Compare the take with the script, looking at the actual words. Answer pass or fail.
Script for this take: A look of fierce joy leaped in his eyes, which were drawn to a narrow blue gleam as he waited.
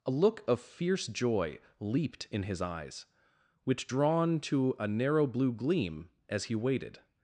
fail